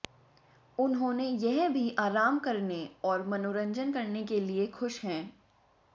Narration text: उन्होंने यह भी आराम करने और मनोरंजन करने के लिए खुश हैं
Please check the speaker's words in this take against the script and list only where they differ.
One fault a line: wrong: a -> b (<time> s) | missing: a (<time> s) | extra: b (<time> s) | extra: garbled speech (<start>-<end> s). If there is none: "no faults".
no faults